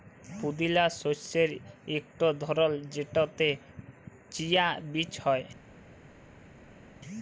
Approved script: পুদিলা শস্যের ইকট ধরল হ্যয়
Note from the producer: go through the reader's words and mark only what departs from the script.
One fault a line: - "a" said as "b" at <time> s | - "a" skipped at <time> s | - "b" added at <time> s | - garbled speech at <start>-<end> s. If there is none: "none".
- "যেটতে চিয়া বীজ" added at 2.9 s